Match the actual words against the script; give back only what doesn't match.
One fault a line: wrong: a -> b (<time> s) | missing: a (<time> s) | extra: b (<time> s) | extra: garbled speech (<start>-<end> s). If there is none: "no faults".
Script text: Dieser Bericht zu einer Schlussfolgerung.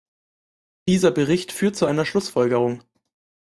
extra: führt (1.5 s)